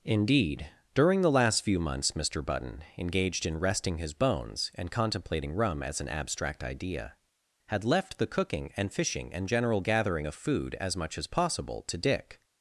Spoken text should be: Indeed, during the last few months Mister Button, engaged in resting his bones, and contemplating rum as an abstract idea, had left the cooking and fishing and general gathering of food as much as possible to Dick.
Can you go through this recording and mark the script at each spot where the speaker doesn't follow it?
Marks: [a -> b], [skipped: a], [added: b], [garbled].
Indeed, during the last few months Mister Button, engaged in resting his bones, and contemplating rum as an abstract idea, had left the cooking and fishing and general gathering of food as much as possible to Dick.